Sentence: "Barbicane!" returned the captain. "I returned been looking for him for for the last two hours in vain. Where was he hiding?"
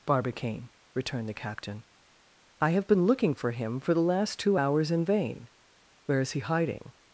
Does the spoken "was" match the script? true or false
false